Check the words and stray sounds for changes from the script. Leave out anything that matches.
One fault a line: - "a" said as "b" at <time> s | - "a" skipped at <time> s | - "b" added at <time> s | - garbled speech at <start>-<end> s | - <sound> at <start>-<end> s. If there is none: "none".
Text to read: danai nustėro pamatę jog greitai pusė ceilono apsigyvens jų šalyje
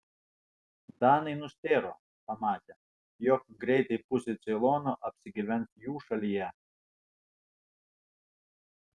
none